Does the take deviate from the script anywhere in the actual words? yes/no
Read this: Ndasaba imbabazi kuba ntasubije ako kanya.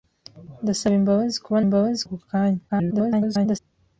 yes